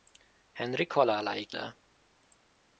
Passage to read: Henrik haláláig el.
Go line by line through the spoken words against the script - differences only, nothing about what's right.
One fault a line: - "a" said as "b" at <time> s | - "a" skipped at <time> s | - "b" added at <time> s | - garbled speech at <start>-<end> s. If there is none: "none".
none